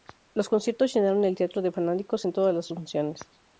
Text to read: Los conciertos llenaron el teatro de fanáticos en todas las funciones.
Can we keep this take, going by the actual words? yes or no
yes